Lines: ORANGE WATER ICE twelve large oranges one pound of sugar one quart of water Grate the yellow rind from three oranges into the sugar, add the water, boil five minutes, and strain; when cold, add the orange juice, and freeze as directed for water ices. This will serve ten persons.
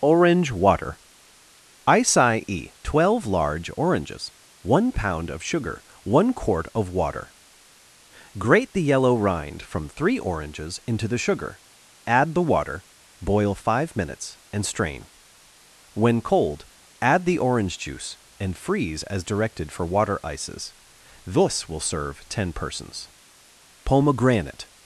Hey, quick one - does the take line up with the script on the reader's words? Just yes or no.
no